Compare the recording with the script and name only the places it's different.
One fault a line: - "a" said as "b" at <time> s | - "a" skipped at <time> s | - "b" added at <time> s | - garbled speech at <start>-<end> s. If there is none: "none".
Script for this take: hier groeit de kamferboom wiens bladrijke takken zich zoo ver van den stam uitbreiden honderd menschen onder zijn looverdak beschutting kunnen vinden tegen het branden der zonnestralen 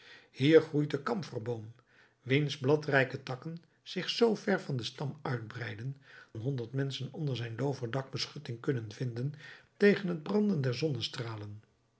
none